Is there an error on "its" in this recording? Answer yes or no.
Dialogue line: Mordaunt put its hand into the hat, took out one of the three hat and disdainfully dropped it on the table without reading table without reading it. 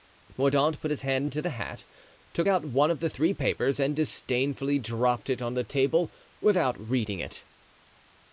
yes